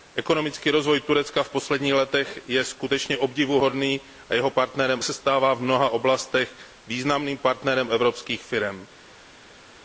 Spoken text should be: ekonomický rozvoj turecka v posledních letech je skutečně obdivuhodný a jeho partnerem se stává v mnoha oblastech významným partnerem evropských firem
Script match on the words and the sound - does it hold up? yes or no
yes